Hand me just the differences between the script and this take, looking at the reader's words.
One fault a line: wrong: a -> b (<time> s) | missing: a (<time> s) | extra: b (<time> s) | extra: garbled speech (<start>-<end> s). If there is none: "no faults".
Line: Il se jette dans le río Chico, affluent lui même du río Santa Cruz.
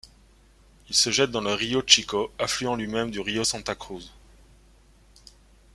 no faults